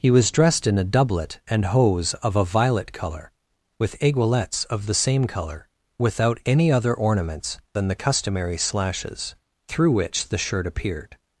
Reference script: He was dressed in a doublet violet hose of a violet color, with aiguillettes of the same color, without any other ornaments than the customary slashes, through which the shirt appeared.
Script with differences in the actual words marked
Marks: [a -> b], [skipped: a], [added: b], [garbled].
He was dressed in a doublet [violet -> and] hose of a violet color, with aiguillettes of the same color, without any other ornaments than the customary slashes, through which the shirt appeared.